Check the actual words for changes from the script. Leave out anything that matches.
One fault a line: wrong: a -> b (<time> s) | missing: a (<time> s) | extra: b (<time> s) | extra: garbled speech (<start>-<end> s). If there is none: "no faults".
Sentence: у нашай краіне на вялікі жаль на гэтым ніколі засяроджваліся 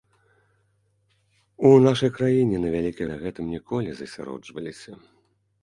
missing: жаль (3.0 s)